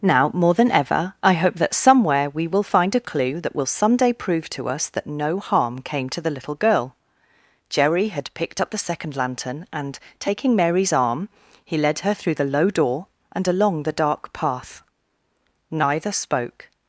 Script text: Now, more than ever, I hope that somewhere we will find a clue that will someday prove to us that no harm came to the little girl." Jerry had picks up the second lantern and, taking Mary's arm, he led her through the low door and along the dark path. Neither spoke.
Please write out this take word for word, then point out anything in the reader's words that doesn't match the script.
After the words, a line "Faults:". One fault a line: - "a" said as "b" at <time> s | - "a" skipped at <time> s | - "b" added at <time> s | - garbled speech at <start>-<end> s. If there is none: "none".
Now, more than ever, I hope that somewhere we will find a clue that will someday prove to us that no harm came to the little girl." Jerry had picked up the second lantern and, taking Mary's arm, he led her through the low door and along the dark path. Neither spoke.
Faults:
- "picks" said as "picked" at 8.3 s